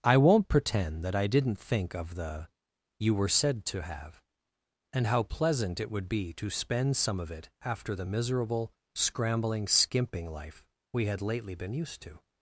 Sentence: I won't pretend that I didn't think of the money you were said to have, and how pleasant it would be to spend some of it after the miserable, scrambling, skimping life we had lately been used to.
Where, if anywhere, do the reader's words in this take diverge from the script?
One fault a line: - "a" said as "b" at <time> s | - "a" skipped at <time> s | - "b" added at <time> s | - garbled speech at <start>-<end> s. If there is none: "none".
- "money" skipped at 2.5 s